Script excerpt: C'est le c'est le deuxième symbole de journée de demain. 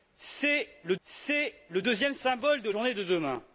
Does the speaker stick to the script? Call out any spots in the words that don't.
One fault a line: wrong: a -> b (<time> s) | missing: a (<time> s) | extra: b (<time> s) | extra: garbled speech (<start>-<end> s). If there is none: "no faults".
no faults